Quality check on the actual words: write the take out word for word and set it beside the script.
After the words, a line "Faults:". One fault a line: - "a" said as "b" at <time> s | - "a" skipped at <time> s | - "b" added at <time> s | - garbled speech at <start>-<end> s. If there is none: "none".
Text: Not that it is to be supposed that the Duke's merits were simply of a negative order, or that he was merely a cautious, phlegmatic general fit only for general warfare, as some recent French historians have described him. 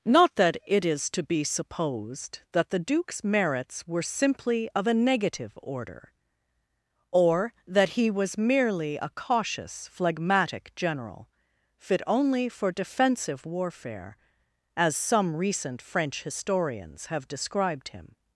Not that it is to be supposed that the Duke's merits were simply of a negative order, or that he was merely a cautious, phlegmatic general fit only for defensive warfare, as some recent French historians have described him.
Faults:
- "general" said as "defensive" at 12.7 s